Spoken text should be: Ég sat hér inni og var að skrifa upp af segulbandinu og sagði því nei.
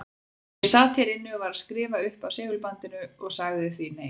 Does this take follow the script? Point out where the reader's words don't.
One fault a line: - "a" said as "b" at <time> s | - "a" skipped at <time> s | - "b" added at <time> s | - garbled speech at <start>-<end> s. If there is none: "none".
none